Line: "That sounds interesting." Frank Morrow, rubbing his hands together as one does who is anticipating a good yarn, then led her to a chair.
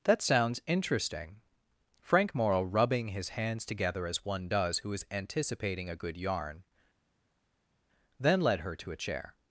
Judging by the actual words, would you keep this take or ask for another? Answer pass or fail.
pass